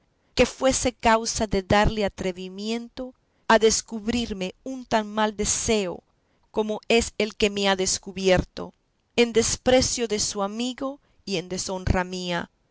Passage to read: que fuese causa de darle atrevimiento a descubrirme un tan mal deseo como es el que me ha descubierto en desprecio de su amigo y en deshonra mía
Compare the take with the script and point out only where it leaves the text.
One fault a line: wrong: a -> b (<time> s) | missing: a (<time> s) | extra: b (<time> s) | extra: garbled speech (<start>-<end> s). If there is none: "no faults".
no faults